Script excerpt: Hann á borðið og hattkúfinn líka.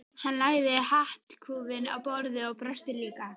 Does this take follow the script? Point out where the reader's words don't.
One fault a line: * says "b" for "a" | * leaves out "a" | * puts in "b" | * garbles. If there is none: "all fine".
* puts in "lagði hattkúfinn"
* says "brosti" for "hattkúfinn"